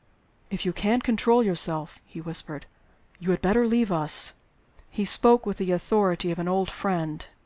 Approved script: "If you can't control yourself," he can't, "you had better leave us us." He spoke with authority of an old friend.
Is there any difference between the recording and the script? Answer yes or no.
yes